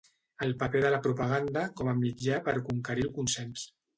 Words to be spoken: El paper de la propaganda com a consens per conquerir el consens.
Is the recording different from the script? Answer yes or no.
yes